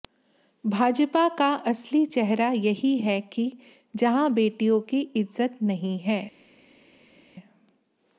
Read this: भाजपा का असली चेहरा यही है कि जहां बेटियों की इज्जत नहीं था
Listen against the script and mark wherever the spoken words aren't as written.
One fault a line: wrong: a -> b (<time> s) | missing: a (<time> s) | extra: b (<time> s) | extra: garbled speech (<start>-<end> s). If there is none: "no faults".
wrong: था -> है (6.0 s)